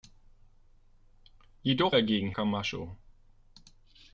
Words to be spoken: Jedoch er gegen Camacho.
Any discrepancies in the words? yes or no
no